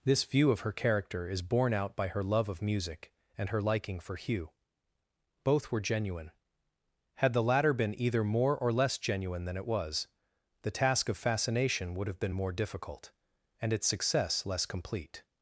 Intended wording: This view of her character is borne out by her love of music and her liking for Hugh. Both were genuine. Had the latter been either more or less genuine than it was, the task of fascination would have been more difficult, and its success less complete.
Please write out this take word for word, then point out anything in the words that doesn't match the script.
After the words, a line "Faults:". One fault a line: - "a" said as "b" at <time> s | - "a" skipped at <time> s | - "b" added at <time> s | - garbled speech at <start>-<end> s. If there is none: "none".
This view of her character is borne out by her love of music and her liking for Hugh. Both were genuine. Had the latter been either more or less genuine than it was, the task of fascination would have been more difficult, and its success less complete.
Faults:
none